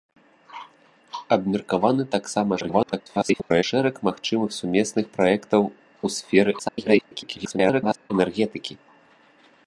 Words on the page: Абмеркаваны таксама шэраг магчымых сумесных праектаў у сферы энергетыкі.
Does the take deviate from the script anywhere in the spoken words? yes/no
yes